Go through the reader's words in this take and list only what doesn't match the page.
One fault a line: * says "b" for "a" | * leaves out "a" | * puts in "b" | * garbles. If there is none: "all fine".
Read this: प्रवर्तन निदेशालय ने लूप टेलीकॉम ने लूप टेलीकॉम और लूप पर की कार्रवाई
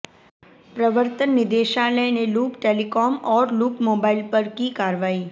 * says "और" for "ने"
* says "मोबाइल" for "टेलीकॉम और लूप"